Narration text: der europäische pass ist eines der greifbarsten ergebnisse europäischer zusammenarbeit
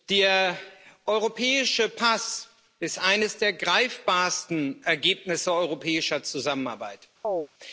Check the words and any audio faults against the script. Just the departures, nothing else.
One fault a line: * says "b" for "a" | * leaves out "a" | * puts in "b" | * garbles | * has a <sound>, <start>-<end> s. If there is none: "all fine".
* has a chirp, 7.2-7.5 s